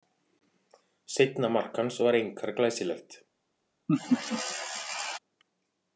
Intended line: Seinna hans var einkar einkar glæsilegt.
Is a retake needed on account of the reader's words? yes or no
yes